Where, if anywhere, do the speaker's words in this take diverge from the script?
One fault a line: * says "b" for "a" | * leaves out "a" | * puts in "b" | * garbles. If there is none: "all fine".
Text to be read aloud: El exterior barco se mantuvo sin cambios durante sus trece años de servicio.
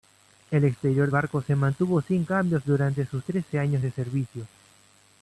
all fine